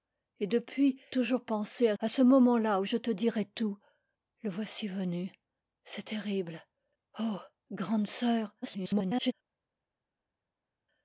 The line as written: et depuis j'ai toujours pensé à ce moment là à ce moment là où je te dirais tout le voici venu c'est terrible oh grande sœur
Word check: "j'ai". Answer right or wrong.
wrong